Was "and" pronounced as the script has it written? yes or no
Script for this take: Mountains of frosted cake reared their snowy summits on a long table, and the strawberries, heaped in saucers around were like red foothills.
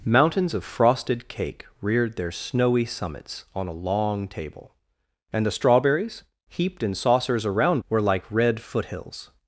yes